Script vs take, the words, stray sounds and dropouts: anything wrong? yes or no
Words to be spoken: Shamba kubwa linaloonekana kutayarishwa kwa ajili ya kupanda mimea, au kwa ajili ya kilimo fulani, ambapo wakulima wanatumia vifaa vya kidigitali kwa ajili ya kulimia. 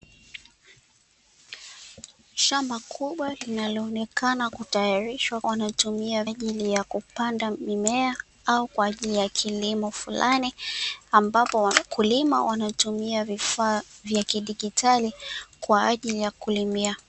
yes